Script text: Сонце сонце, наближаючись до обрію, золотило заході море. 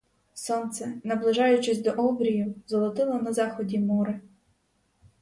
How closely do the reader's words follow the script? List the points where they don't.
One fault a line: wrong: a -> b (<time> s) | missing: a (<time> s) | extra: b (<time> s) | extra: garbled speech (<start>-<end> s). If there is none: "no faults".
missing: сонце (1.0 s)
extra: на (3.1 s)